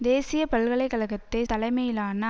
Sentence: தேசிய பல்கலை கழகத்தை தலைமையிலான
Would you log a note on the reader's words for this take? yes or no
no